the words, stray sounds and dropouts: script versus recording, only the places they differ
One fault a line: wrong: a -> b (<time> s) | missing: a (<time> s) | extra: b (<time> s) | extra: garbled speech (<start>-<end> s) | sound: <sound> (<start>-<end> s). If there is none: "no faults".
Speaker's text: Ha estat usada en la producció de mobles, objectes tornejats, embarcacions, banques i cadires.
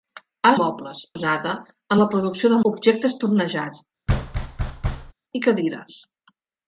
wrong: estat -> mobles (0.6 s)
missing: mobles (2.6 s)
missing: embarcacions banques (3.8 s)
sound: thud (4.1-5.1 s)